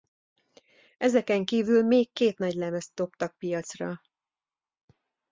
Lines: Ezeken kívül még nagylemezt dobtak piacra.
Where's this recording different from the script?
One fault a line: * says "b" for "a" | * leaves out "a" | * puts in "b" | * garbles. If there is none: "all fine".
* puts in "két"